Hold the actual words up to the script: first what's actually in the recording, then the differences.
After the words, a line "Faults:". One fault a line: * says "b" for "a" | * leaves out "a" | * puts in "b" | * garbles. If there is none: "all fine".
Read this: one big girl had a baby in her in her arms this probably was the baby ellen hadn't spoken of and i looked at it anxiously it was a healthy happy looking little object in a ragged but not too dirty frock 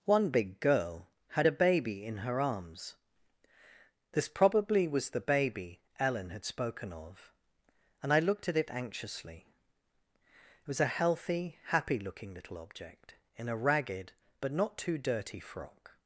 one big girl had a baby in her arms this probably was the baby ellen had spoken of and i looked at it anxiously it was a healthy happy looking little object in a ragged but not too dirty frock
Faults:
* leaves out "in her"
* says "had" for "hadn't"